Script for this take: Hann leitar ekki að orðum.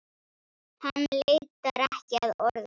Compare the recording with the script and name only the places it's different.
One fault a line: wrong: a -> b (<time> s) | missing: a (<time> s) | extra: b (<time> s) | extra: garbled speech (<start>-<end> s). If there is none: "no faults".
no faults